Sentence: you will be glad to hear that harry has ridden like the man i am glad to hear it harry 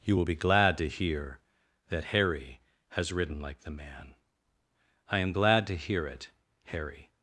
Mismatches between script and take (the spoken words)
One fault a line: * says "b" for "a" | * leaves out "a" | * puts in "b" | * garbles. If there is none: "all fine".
all fine